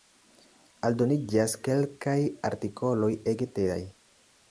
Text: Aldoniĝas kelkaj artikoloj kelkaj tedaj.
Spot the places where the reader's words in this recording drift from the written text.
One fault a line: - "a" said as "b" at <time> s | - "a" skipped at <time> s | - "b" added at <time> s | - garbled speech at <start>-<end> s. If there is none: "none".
- "kelkaj" said as "ege" at 3.3 s